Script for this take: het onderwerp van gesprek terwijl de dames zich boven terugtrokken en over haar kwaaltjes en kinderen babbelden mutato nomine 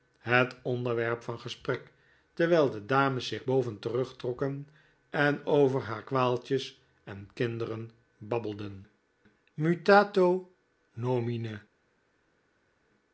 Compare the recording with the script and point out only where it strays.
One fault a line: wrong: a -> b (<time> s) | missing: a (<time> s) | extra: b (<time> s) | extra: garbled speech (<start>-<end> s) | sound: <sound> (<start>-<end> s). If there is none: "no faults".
no faults